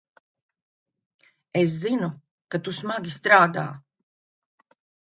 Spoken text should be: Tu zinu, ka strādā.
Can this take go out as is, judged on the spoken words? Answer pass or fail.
fail